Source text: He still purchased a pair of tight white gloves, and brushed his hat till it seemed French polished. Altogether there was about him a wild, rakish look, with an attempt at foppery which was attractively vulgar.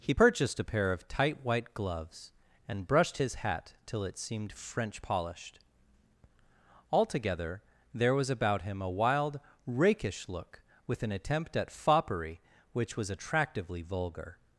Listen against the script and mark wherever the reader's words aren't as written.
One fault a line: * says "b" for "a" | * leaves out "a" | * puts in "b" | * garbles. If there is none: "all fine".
* leaves out "still"